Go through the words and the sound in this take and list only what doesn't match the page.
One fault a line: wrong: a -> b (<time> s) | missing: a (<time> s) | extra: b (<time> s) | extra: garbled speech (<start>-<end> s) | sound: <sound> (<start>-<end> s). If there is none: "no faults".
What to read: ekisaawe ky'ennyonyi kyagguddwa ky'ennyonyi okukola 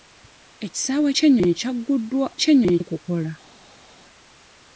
no faults